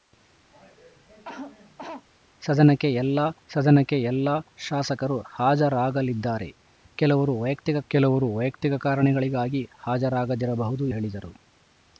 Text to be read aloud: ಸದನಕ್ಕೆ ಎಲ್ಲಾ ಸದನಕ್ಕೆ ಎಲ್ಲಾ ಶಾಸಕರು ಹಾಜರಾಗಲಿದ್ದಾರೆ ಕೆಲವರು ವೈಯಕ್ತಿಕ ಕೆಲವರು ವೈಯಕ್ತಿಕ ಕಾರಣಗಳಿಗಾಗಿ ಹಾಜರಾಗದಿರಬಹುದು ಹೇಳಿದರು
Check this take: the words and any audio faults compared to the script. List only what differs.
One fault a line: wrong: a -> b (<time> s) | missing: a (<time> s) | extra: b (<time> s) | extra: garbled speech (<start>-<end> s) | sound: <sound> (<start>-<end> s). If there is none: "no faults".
sound: cough (0.5-2.1 s)